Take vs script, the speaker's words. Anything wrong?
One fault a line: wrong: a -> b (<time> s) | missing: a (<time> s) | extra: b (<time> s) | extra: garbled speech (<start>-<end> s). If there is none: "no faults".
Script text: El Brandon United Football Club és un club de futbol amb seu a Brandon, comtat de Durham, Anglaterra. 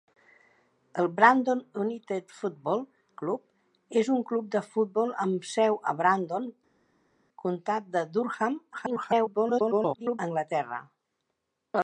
extra: garbled speech (8.7-10.2 s)